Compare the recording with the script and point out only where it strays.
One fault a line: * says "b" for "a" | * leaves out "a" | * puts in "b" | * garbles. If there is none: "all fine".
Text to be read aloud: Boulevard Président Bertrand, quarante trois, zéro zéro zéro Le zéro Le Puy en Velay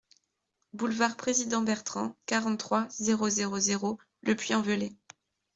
* leaves out "zéro Le"